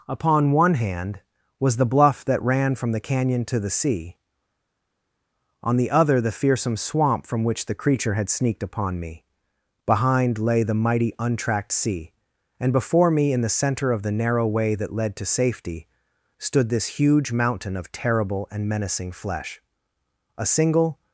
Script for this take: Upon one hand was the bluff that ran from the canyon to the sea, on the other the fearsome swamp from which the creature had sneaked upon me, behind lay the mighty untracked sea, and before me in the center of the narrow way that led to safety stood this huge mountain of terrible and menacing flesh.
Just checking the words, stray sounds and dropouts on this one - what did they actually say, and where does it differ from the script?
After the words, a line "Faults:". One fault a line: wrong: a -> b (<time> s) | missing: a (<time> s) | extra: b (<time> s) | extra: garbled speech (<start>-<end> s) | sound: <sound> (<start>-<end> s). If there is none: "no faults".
Upon one hand was the bluff that ran from the canyon to the sea, on the other the fearsome swamp from which the creature had sneaked upon me, behind lay the mighty untracked sea, and before me in the center of the narrow way that led to safety stood this huge mountain of terrible and menacing flesh. A single
Faults:
extra: A single (20.4 s)